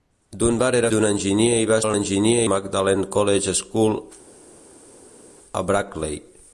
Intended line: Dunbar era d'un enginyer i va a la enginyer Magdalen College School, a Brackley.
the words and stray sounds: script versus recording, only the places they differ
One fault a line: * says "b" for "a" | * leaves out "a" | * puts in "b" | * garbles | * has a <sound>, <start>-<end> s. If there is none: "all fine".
all fine